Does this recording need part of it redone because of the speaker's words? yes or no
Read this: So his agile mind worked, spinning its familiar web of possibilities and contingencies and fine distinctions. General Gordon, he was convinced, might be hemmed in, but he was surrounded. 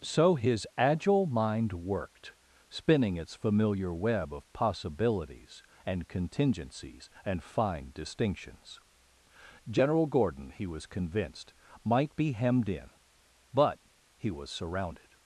no